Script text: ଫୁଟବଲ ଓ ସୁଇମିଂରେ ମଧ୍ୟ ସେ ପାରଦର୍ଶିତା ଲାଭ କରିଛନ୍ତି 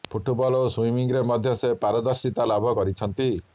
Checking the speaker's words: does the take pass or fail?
pass